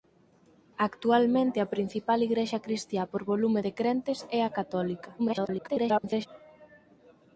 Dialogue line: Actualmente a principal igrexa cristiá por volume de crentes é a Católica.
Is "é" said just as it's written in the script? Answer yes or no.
yes